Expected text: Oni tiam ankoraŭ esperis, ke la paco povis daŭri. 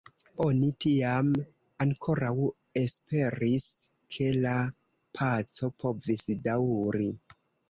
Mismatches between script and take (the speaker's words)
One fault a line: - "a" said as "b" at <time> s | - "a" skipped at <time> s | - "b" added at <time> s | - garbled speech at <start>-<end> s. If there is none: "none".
none